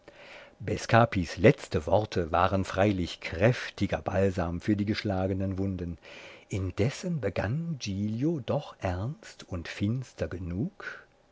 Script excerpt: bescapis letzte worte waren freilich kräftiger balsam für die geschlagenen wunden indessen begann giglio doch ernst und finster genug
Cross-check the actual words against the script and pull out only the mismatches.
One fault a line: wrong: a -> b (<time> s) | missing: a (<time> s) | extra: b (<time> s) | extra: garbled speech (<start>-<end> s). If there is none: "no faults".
no faults